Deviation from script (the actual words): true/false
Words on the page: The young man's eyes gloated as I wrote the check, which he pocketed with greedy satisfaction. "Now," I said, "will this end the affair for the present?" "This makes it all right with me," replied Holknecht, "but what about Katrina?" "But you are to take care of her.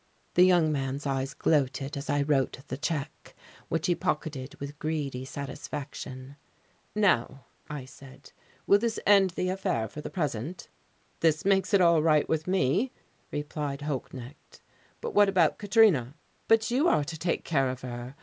false